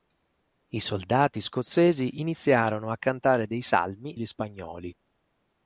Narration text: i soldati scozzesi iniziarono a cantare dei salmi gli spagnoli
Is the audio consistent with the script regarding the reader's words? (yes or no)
yes